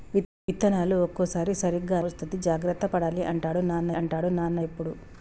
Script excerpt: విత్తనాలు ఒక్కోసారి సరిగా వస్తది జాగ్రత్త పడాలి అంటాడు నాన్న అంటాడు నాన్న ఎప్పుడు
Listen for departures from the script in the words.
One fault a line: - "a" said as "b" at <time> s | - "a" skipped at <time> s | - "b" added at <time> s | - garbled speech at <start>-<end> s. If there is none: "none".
none